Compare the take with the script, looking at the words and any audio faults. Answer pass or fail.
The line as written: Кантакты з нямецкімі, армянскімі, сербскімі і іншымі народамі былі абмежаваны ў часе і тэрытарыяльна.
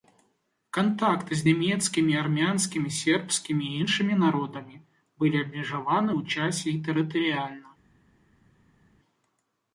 pass